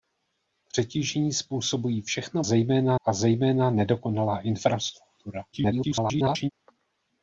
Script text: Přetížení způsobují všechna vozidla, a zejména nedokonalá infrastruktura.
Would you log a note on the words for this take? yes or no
yes